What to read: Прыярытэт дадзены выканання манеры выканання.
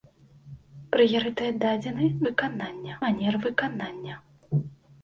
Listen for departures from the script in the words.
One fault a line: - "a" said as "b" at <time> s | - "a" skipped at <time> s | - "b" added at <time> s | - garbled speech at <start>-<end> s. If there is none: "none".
none